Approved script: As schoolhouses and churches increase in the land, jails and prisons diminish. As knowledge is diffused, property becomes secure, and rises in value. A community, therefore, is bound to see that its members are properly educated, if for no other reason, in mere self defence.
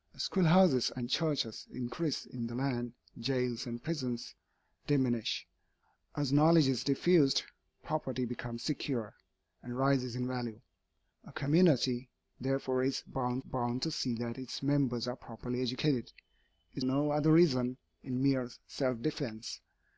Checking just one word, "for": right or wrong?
wrong